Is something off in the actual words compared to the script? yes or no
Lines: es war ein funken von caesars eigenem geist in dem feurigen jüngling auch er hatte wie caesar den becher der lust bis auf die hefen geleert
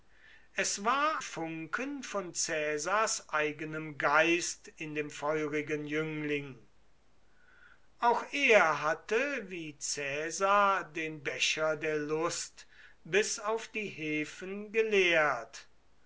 yes